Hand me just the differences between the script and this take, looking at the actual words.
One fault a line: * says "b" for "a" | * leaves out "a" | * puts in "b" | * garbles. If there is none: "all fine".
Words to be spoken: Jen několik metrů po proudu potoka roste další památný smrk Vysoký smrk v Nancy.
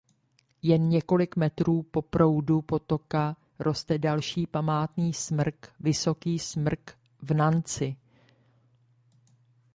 all fine